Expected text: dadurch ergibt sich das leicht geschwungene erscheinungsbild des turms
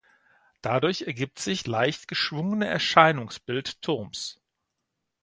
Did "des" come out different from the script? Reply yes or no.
yes